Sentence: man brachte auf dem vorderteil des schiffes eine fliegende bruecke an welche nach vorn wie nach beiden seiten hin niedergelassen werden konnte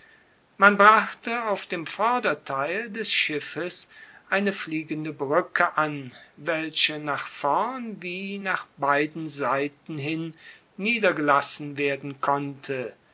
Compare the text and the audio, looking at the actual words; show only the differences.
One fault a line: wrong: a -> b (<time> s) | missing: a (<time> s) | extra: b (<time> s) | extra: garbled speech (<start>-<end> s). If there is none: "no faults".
no faults